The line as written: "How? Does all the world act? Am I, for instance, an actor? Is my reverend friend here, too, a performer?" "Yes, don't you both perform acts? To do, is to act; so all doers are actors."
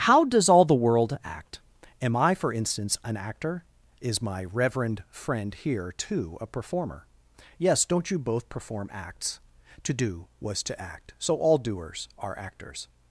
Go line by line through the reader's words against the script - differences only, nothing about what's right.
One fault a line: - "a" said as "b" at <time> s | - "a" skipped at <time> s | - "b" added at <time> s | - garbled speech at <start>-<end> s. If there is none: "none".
- "is" said as "was" at 10.4 s